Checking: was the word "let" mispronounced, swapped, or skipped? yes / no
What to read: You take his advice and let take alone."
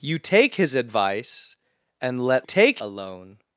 no